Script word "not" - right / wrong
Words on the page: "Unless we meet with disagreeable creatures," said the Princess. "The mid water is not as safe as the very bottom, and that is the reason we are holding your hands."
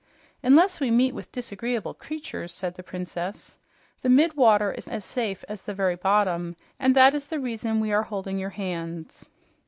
wrong